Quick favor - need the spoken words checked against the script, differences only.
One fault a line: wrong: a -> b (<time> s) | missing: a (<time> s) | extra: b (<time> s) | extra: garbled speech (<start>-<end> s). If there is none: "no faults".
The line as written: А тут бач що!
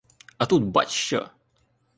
no faults